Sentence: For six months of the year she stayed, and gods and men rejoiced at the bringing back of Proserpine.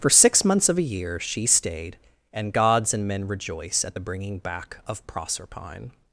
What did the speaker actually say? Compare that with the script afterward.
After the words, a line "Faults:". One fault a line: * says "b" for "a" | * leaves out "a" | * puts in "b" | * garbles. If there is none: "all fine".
For six months of a year she stayed, and gods and men rejoice at the bringing back of Proserpine.
Faults:
* says "a" for "the"
* says "rejoice" for "rejoiced"